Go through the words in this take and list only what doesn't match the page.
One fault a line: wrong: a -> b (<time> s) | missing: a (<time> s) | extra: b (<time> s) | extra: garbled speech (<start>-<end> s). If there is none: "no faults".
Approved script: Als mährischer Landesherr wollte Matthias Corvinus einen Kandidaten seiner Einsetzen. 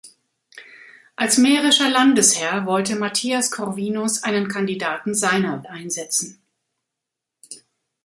no faults